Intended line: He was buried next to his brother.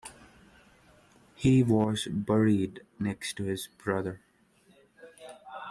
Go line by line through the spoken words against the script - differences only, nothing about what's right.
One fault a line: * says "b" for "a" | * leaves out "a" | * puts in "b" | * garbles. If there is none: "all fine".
all fine